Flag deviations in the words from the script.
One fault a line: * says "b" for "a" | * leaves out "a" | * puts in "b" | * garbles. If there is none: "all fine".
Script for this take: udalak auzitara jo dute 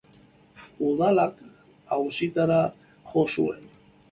* says "zuen" for "dute"